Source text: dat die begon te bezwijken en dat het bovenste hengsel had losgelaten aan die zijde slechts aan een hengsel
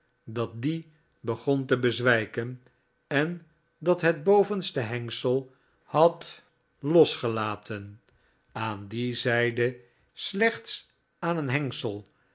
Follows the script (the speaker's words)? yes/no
yes